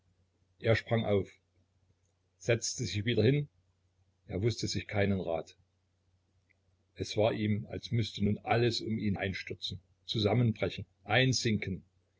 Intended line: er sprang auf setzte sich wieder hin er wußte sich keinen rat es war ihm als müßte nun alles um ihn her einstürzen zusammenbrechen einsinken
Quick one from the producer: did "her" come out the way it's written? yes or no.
no